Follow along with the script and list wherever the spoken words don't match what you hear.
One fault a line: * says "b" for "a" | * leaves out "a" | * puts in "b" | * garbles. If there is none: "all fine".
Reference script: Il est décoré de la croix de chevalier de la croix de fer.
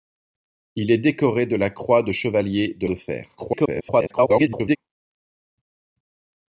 * leaves out "la croix"
* garbles